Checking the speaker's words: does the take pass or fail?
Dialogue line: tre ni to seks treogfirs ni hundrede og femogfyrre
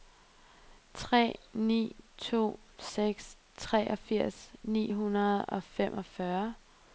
pass